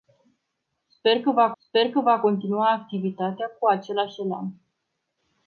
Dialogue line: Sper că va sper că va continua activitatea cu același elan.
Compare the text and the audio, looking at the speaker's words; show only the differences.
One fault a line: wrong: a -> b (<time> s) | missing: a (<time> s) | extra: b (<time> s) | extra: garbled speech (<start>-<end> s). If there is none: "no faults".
no faults